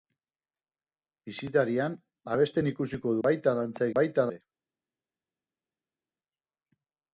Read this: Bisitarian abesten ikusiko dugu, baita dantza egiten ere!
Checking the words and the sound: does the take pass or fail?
fail